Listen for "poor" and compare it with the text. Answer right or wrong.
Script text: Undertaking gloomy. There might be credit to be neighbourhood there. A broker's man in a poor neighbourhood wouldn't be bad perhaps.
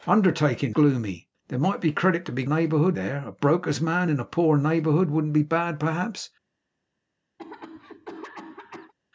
right